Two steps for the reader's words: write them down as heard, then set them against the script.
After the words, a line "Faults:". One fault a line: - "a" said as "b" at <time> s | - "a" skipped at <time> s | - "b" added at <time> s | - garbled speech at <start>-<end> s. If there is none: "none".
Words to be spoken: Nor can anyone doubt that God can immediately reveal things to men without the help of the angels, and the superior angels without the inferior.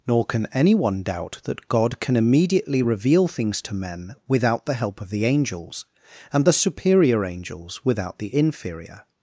Nor can anyone doubt that God can immediately reveal things to men without the help of the angels, and the superior angels without the inferior.
Faults:
none